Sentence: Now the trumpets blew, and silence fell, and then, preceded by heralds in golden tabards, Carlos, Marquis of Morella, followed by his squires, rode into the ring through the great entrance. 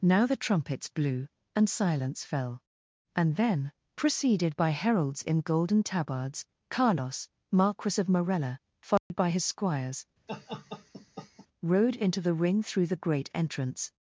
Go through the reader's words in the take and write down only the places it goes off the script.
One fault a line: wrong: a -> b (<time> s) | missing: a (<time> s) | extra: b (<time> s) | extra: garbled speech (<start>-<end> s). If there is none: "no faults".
no faults